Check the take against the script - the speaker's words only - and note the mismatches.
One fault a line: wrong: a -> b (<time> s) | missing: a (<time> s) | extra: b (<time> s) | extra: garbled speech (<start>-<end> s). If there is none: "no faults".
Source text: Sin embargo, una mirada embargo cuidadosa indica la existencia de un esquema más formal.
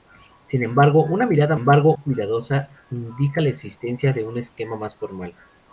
no faults